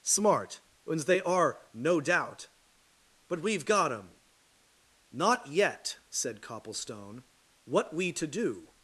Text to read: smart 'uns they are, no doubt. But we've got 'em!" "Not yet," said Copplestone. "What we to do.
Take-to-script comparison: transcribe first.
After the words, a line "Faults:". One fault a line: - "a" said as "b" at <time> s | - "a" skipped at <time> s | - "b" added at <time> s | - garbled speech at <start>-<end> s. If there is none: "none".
smart 'uns they are, no doubt. But we've got 'em!" "Not yet," said Copplestone. "What we to do.
Faults:
none